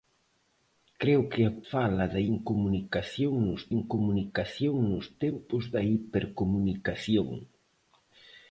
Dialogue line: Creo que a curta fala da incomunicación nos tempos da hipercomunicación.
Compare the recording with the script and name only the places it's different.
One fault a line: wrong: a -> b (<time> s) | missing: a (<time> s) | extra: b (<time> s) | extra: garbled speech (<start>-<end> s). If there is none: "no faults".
missing: curta (1.5 s)
extra: incomunicación nos (3.8 s)